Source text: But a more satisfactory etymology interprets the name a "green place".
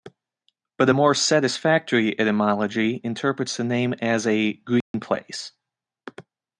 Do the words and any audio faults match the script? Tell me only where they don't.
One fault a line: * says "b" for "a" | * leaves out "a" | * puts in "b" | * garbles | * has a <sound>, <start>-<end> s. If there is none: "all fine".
* puts in "as"
* has a dropout, 4.8-4.9 s